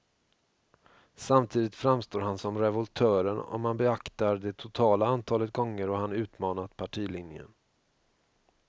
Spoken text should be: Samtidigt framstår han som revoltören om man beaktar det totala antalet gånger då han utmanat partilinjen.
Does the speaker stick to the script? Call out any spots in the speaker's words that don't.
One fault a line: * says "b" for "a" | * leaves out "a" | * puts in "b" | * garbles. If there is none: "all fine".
all fine